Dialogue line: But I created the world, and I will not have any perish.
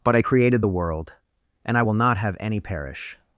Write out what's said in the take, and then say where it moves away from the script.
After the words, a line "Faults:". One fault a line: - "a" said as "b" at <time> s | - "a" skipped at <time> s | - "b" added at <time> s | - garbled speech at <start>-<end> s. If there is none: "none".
But I created the world, and I will not have any perish.
Faults:
none